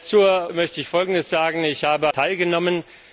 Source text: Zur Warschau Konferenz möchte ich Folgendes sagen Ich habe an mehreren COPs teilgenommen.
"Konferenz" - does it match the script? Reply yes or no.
no